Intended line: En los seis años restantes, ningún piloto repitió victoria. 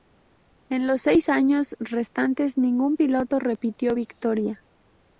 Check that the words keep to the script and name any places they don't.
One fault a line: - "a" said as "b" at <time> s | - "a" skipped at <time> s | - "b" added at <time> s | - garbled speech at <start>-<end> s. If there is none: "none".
none